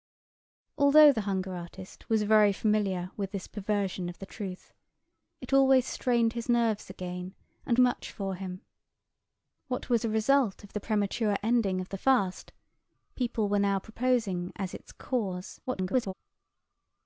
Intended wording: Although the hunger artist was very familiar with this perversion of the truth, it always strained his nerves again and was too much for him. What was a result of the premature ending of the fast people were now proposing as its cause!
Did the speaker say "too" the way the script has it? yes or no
no